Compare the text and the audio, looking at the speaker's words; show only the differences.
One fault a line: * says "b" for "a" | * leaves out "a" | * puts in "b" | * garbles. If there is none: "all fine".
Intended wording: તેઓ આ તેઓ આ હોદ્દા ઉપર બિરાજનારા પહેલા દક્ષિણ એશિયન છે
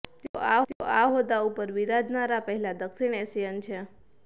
all fine